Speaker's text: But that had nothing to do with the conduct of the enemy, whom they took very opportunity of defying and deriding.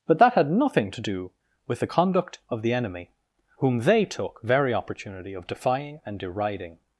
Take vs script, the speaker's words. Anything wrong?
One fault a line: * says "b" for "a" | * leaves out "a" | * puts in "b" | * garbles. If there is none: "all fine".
all fine